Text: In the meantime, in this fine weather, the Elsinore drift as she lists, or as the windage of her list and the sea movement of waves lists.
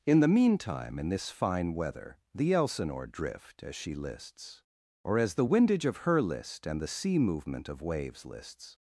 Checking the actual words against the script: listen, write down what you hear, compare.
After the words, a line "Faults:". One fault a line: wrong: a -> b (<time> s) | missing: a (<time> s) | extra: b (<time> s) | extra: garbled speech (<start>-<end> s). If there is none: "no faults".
In the meantime, in this fine weather, the Elsinore drift as she lists, or as the windage of her list and the sea movement of waves lists.
Faults:
no faults